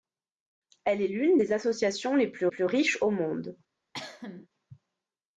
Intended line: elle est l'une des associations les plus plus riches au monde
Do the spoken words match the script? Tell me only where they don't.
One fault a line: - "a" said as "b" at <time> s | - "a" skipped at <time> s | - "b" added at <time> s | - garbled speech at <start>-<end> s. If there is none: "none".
none